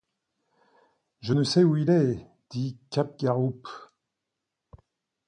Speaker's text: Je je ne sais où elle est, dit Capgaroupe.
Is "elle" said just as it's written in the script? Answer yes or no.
no